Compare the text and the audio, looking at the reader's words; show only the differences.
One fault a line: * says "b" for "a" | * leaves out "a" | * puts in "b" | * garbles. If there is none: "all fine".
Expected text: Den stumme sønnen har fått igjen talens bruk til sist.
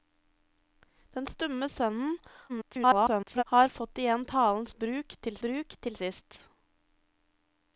* garbles
* puts in "bruk til"